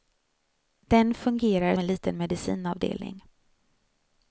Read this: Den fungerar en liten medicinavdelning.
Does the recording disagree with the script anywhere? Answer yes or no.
no